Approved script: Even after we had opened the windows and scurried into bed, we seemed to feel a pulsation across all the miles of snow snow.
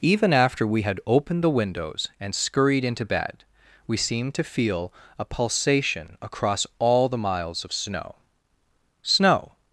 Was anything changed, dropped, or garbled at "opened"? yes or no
no